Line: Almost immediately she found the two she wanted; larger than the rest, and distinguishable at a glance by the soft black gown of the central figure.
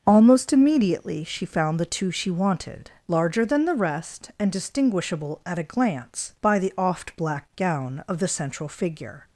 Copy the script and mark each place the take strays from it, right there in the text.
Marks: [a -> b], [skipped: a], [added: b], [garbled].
Almost immediately she found the two she wanted; larger than the rest, and distinguishable at a glance by the [soft -> oft] black gown of the central figure.